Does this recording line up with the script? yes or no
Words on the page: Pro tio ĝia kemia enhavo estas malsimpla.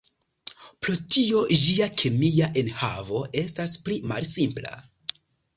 no